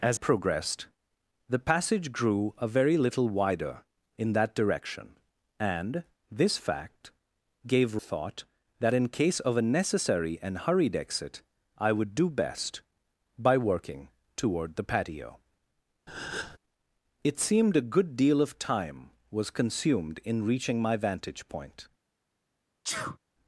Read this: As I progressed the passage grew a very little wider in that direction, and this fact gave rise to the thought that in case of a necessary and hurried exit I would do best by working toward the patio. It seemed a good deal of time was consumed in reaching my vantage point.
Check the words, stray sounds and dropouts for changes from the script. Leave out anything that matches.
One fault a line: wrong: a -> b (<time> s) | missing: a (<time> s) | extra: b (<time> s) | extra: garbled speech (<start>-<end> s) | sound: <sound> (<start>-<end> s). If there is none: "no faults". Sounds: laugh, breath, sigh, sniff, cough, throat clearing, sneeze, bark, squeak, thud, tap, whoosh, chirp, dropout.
missing: I (0.2 s)
missing: rise to the (8.0 s)
sound: breath (16.1-16.6 s)
sound: sneeze (22.8-23.2 s)